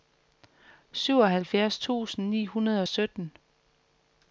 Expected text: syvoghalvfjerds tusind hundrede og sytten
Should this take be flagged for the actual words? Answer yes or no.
yes